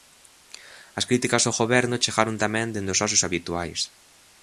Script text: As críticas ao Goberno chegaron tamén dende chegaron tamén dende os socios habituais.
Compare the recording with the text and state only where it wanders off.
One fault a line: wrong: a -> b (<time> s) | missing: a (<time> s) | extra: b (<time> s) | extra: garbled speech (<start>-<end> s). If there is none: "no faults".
missing: chegaron tamén dende (2.9 s)